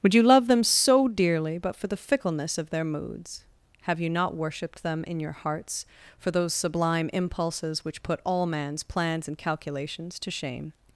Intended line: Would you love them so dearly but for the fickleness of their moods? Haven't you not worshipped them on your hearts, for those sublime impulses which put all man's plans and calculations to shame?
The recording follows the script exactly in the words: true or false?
false